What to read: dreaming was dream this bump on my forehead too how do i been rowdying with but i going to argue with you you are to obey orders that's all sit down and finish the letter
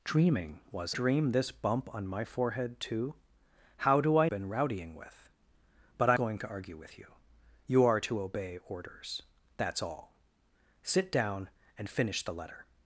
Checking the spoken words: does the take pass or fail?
pass